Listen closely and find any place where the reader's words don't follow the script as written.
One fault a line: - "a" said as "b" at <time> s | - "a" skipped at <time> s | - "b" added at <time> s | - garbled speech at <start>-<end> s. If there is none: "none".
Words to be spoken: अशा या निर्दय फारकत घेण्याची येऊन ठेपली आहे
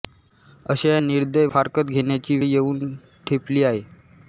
none